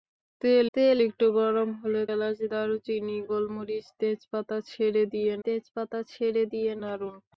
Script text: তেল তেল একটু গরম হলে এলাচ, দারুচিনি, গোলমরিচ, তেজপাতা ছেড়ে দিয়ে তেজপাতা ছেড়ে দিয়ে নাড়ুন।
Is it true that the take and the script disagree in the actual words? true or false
false